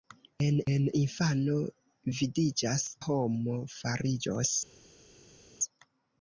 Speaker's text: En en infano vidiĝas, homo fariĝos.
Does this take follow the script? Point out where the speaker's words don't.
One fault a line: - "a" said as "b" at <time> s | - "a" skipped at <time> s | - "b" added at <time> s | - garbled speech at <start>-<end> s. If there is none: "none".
none